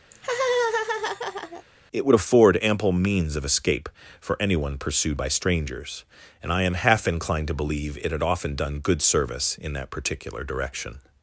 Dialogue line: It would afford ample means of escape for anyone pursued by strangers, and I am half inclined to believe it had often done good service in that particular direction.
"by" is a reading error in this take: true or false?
false